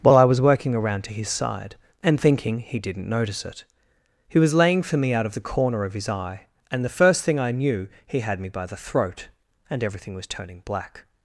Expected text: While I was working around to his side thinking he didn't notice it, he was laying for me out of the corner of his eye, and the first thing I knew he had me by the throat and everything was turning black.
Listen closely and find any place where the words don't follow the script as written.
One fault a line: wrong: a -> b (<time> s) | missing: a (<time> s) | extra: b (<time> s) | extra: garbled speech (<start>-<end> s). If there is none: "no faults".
extra: and (2.0 s)